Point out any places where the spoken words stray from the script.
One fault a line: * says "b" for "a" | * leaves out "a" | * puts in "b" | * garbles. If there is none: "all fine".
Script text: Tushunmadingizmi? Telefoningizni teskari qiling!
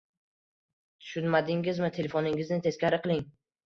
all fine